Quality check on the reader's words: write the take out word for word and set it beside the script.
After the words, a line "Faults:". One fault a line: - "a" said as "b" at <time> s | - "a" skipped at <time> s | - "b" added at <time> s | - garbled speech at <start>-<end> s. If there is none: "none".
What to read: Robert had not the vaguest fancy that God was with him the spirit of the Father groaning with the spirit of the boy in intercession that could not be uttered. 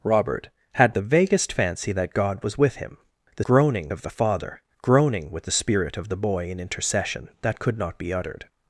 Robert had the vaguest fancy that God was with him the groaning of the Father groaning with the spirit of the boy in intercession that could not be uttered.
Faults:
- "not" skipped at 1.0 s
- "spirit" said as "groaning" at 3.5 s